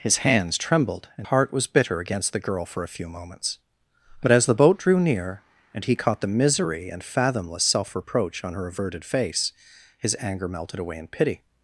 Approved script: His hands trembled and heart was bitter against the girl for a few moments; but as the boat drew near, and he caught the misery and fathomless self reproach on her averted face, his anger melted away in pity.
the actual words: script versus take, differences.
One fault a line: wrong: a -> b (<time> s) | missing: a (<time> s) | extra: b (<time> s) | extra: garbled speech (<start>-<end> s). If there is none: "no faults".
no faults